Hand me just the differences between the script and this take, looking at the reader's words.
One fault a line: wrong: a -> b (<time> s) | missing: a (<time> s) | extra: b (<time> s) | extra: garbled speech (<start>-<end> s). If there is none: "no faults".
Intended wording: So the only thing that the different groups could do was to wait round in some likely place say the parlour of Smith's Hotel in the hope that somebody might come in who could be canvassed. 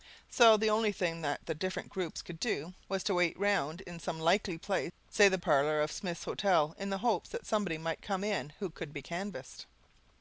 no faults